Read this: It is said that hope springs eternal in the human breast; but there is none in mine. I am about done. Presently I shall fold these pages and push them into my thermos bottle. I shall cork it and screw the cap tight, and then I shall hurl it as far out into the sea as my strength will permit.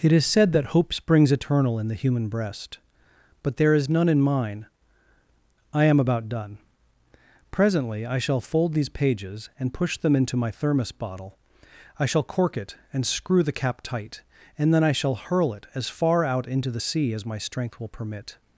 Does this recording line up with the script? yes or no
yes